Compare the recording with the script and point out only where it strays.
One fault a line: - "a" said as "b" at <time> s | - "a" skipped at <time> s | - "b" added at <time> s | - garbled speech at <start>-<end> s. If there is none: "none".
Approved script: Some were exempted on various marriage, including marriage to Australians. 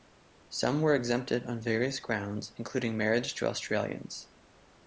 - "marriage" said as "grounds" at 2.0 s